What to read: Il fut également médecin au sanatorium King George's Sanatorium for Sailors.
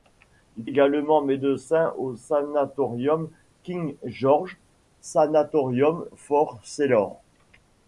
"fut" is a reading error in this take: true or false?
true